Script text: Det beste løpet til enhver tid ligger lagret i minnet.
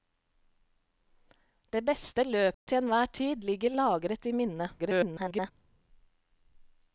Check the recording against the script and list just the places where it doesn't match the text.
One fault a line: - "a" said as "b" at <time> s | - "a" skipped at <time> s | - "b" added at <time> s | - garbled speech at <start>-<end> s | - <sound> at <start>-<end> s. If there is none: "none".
- dropout at 2.5-2.7 s
- garbled speech at 4.8-5.5 s